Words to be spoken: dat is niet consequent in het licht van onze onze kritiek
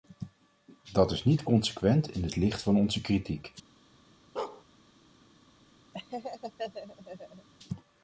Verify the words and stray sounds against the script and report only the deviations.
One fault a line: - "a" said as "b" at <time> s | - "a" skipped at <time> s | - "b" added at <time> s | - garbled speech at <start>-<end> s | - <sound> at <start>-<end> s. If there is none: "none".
- "onze" skipped at 3.0 s
- bark at 4.4-4.6 s
- laugh at 5.9-7.5 s